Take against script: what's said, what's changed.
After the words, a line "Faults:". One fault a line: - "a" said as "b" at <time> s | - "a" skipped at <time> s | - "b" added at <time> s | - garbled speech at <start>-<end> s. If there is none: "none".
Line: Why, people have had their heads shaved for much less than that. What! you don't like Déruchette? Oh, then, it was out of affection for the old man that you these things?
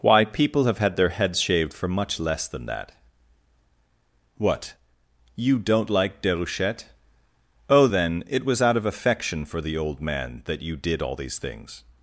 Why, people have had their heads shaved for much less than that. What! you don't like Déruchette? Oh, then, it was out of affection for the old man that you did all these things?
Faults:
- "did all" added at 10.7 s